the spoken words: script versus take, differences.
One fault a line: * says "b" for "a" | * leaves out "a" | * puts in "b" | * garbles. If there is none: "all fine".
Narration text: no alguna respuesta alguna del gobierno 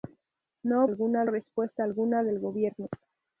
all fine